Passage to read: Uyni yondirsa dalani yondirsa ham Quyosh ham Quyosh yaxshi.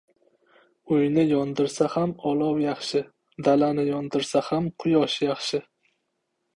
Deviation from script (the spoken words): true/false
true